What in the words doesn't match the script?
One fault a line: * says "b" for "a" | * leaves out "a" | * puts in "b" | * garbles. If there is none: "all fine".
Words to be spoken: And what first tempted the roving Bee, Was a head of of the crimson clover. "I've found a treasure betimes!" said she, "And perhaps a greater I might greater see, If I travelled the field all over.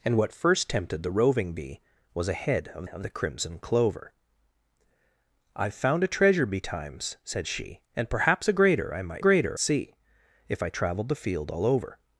all fine